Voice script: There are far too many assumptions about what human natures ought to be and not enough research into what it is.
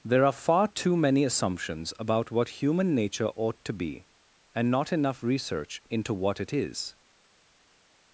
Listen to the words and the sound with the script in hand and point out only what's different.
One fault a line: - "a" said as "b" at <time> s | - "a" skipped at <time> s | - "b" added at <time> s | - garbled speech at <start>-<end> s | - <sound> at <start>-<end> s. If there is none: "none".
- "natures" said as "nature" at 3.0 s